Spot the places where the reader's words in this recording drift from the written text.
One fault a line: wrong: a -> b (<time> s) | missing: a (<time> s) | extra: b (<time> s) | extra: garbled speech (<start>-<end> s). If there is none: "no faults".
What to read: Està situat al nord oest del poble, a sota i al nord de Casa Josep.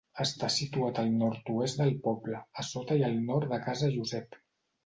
no faults